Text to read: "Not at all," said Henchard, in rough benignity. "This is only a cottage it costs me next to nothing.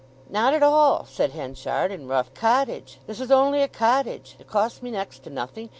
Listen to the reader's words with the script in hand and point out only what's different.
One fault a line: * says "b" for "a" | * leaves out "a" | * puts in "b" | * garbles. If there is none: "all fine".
* says "cottage" for "benignity"